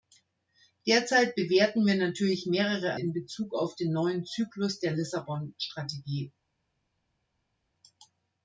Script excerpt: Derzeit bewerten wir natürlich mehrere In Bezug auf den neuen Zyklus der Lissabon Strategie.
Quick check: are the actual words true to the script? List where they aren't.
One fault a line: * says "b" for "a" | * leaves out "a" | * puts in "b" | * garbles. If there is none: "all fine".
all fine